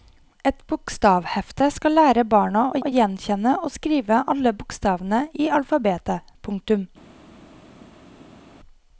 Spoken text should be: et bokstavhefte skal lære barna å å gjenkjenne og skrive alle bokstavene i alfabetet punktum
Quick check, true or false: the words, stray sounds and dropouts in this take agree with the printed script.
true